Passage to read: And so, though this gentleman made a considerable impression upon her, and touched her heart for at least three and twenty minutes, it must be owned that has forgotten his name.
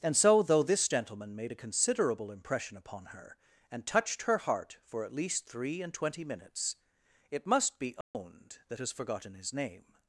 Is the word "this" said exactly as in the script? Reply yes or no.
yes